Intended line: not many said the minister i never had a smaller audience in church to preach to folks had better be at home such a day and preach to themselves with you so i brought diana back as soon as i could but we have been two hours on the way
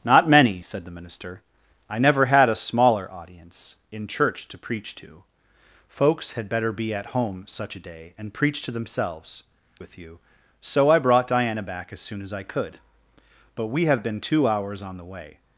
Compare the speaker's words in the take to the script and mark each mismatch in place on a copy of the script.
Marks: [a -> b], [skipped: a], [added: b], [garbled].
not many said the minister i never had a smaller audience in church to preach to folks had better be at home such a day and preach to themselves with you so i brought diana back as soon as i could but we have been two hours on the way